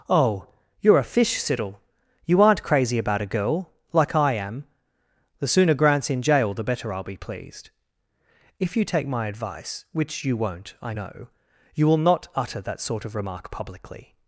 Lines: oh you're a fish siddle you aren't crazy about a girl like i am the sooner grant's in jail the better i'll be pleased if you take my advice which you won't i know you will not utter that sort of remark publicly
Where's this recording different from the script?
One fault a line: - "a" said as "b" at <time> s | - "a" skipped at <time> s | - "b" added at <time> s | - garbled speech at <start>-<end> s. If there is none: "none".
none